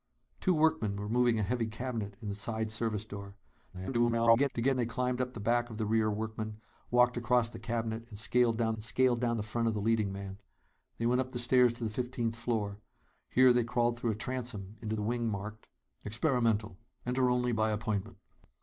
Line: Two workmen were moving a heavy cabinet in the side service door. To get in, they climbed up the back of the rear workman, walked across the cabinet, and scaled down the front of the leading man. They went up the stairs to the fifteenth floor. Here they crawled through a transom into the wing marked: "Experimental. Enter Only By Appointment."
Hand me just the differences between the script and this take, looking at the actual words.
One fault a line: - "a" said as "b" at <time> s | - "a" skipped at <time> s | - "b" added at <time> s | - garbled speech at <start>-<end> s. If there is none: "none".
- garbled speech at 3.7-4.5 s
- "in" skipped at 4.8 s
- "and scaled down" added at 8.7 s